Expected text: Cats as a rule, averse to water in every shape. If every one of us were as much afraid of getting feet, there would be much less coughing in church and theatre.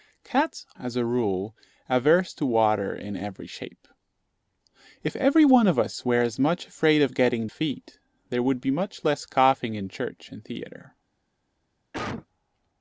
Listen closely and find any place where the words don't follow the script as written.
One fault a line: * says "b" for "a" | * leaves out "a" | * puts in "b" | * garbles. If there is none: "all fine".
all fine